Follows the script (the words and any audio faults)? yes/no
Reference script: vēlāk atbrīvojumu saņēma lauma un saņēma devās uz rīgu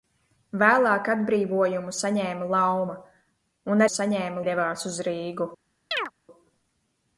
no